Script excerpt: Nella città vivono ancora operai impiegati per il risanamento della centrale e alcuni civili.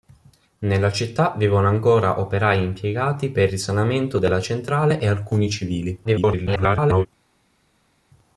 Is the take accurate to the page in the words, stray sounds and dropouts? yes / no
no